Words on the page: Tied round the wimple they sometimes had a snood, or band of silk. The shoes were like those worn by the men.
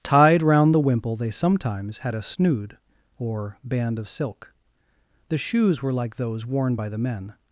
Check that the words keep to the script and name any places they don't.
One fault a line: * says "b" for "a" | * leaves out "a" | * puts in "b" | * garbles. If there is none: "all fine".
all fine